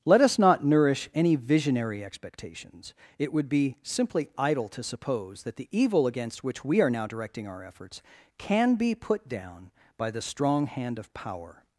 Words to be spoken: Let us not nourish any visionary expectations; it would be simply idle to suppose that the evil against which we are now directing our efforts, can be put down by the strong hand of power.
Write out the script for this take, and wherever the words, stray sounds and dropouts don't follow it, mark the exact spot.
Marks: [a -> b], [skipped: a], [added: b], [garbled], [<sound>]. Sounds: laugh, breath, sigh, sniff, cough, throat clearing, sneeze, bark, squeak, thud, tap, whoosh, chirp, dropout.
Let us not nourish any visionary expectations; it would be simply idle to suppose that the evil against which we are now directing our efforts, can be put down by the strong hand of power.